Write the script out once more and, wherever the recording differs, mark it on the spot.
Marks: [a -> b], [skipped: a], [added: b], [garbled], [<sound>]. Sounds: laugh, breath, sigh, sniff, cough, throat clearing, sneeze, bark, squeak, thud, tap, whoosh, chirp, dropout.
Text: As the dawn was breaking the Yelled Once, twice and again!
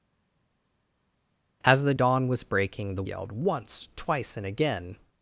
As the dawn was breaking the Yelled Once, twice and again!